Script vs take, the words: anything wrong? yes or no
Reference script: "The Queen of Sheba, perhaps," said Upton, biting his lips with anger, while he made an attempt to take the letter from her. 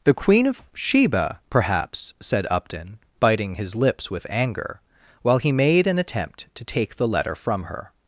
no